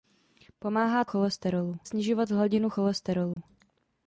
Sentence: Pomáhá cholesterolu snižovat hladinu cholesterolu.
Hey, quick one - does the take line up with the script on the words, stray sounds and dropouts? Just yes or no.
no